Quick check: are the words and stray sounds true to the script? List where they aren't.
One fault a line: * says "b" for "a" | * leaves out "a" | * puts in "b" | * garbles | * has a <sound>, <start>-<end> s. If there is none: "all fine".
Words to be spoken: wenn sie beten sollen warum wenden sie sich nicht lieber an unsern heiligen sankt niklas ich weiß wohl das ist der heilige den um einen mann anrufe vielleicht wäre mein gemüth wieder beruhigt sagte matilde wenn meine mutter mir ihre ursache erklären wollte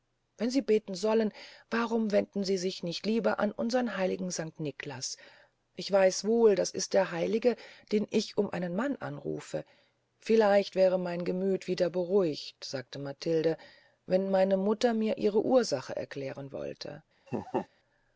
* puts in "ich"
* has a laugh, 17.3-17.7 s